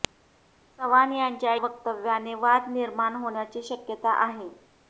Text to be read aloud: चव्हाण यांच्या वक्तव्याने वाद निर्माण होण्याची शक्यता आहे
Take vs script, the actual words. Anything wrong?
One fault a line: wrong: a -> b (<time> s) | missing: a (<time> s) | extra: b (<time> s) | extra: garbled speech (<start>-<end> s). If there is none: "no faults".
no faults